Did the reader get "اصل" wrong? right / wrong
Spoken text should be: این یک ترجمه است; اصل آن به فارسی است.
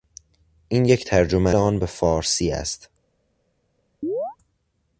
wrong